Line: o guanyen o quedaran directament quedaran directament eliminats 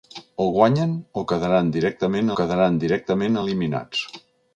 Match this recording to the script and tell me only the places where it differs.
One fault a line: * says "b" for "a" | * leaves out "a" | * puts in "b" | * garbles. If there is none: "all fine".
all fine